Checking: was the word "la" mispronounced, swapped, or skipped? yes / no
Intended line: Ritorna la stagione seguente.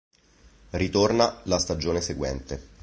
no